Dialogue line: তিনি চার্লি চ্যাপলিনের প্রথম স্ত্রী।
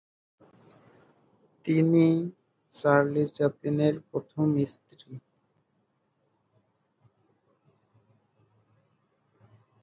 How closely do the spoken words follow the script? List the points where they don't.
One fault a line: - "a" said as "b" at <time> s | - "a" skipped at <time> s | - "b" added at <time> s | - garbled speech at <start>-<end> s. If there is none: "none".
none